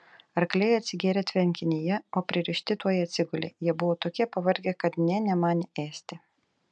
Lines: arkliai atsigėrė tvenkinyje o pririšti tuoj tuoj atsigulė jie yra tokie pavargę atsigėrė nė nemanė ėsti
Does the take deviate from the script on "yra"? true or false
true